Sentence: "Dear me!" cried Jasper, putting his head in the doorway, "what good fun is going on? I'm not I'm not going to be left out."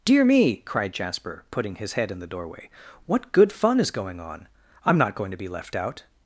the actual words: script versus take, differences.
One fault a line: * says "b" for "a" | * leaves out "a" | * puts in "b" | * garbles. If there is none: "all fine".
* leaves out "I'm not"